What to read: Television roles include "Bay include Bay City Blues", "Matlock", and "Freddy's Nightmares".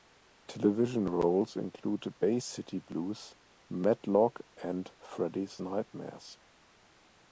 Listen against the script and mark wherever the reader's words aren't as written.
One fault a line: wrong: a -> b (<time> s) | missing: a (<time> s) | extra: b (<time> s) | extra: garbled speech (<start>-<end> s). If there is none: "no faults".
missing: include Bay (2.4 s)